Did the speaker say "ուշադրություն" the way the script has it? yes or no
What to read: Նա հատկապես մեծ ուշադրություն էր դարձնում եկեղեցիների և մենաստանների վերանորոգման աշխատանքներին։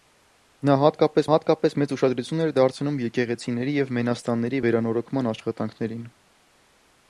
yes